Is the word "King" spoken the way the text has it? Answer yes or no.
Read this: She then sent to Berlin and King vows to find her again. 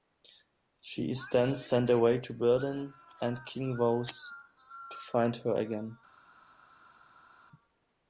yes